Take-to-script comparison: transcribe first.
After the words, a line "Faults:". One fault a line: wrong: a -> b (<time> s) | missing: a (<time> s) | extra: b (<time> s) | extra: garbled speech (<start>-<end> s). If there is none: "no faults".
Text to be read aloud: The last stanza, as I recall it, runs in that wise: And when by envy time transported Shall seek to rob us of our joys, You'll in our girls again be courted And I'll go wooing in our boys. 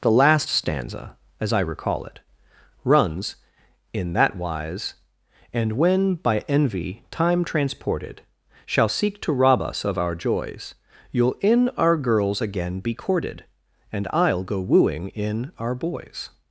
The last stanza, as I recall it, runs in that wise: And when by envy time transported Shall seek to rob us of our joys, You'll in our girls again be courted And I'll go wooing in our boys.
Faults:
no faults